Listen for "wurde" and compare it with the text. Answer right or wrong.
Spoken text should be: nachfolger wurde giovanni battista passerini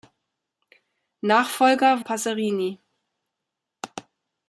wrong